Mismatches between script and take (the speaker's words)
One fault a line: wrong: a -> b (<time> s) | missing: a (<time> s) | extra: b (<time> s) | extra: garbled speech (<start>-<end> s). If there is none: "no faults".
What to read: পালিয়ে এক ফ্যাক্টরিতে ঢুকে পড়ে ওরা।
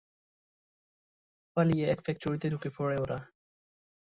no faults